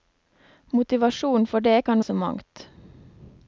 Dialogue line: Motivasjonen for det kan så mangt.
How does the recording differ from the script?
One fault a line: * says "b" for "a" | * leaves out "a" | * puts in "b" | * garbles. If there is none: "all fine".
all fine